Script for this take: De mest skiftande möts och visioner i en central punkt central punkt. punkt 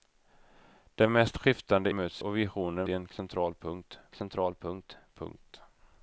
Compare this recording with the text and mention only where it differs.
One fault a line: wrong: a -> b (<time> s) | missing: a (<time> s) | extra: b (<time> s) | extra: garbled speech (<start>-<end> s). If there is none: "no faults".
no faults